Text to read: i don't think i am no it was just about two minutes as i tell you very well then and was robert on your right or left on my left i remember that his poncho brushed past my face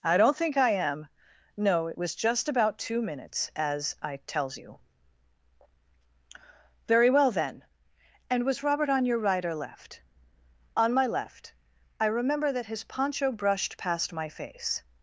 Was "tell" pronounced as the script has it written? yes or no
no